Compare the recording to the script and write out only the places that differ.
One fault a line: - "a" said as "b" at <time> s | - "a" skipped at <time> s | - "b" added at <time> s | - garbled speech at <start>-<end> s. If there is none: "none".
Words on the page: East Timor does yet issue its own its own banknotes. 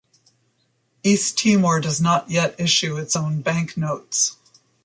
- "not" added at 2.0 s
- "its own" skipped at 3.4 s